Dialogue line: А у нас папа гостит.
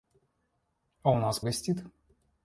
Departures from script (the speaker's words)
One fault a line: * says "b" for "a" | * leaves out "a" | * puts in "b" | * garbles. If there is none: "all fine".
* leaves out "папа"